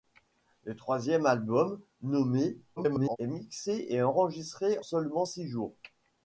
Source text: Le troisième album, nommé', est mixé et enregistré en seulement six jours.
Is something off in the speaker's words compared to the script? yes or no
yes